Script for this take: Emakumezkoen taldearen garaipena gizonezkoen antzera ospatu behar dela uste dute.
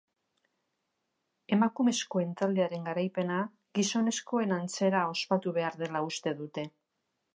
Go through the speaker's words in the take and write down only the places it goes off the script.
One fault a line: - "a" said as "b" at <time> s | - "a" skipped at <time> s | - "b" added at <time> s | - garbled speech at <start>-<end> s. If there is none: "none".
none